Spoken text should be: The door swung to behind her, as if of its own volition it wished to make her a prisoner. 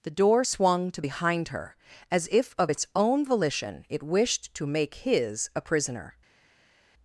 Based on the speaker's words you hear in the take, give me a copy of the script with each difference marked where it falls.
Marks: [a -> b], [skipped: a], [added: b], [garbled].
The door swung to behind her, as if of its own volition it wished to make [her -> his] a prisoner.